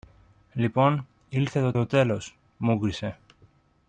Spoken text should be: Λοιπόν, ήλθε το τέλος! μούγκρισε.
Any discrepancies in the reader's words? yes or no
yes